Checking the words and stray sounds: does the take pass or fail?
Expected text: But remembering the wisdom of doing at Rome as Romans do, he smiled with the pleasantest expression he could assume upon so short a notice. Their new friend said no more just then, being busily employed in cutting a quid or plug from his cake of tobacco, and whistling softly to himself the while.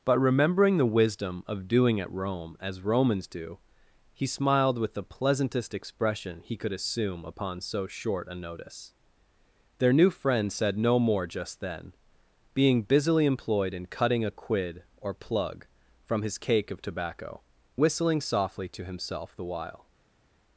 fail